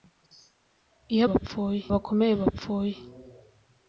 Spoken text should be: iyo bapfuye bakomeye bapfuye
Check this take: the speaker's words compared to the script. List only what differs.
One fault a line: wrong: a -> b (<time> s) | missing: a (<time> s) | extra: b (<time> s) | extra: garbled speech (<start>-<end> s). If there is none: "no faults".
no faults